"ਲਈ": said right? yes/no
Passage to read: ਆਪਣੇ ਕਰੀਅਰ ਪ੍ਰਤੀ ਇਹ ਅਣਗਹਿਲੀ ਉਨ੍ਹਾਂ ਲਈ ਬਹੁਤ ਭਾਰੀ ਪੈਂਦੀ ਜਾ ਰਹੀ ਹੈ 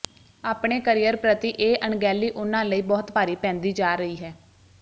yes